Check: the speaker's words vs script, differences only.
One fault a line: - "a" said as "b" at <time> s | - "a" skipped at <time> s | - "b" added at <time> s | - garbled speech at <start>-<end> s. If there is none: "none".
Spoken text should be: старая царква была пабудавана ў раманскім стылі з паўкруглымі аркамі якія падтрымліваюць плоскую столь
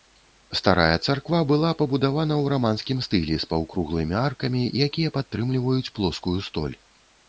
none